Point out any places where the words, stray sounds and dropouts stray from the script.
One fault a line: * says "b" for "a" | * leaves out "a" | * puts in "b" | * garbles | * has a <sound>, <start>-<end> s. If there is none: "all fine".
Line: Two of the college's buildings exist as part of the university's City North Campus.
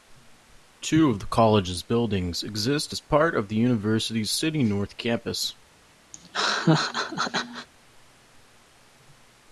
* has a laugh, 6.1-7.7 s